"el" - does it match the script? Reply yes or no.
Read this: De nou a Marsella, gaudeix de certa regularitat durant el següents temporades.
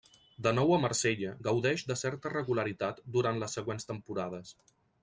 no